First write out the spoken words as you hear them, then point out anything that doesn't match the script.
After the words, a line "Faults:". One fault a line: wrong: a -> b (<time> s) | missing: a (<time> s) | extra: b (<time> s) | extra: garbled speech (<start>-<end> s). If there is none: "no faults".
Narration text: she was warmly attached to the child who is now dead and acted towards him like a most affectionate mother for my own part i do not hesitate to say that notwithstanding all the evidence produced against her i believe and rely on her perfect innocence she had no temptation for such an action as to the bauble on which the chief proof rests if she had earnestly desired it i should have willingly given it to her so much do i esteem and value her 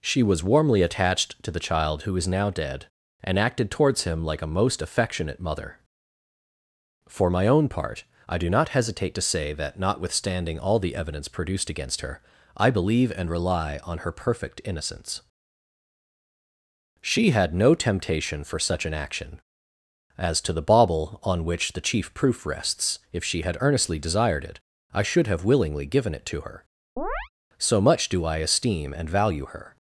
she was warmly attached to the child who is now dead and acted towards him like a most affectionate mother for my own part i do not hesitate to say that notwithstanding all the evidence produced against her i believe and rely on her perfect innocence she had no temptation for such an action as to the bauble on which the chief proof rests if she had earnestly desired it i should have willingly given it to her so much do i esteem and value her
Faults:
no faults